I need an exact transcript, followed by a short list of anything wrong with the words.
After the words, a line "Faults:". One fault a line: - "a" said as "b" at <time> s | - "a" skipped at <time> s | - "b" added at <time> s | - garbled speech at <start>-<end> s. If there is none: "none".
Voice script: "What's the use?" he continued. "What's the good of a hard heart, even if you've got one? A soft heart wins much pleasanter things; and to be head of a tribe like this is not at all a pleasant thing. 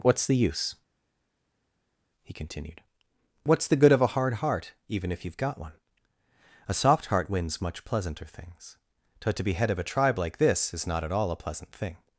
"What's the use?" he continued. "What's the good of a hard heart, even if you've got one? A soft heart wins much pleasanter things; but to be head of a tribe like this is not at all a pleasant thing.
Faults:
- "and" said as "but" at 9.2 s